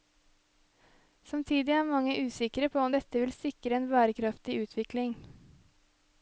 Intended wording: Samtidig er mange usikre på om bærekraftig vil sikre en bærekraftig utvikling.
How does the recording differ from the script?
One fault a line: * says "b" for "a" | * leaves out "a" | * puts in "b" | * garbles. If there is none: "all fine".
* says "dette" for "bærekraftig"